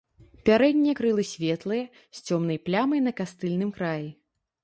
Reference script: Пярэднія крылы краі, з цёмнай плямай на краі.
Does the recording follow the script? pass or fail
fail